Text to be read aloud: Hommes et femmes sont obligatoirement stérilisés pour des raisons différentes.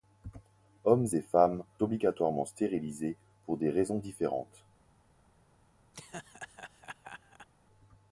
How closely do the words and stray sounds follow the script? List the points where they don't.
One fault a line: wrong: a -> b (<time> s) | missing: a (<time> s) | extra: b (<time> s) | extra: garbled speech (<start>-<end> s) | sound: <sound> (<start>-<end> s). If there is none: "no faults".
missing: sont (1.6 s)
sound: laugh (5.9-7.5 s)